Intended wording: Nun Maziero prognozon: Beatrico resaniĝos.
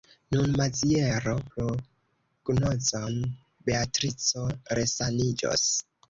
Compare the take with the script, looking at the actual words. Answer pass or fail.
pass